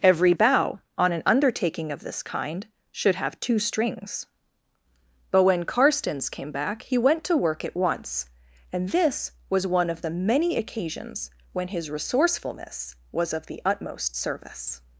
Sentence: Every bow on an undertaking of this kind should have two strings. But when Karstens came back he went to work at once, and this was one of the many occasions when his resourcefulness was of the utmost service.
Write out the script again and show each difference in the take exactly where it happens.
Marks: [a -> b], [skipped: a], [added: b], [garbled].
Every bow on an undertaking of this kind should have two strings. But when Karstens came back he went to work at once, and this was one of the many occasions when his resourcefulness was of the utmost service.